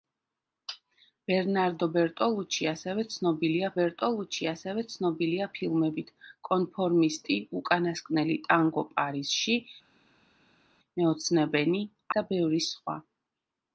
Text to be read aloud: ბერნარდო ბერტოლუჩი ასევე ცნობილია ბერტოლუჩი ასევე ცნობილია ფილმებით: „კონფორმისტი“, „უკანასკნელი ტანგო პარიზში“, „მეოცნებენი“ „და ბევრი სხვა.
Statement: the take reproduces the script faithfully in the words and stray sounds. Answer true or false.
true